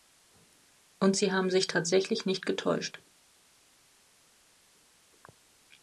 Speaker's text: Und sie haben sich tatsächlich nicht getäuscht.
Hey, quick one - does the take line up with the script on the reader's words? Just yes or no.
yes